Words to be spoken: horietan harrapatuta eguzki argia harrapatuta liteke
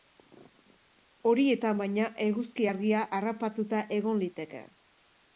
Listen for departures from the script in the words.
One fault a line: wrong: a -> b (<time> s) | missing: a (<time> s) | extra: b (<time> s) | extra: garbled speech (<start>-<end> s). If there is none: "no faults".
wrong: harrapatuta -> baina (1.8 s)
extra: egon (4.0 s)